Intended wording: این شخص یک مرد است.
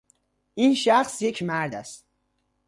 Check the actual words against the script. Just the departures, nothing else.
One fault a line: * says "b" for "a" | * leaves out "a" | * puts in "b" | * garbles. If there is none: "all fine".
all fine